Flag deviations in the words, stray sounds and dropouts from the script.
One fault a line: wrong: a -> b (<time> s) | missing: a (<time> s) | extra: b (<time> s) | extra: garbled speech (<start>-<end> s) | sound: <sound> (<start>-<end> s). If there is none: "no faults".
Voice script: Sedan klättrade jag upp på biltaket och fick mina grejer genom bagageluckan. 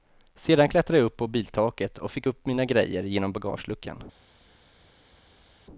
extra: upp (2.3 s)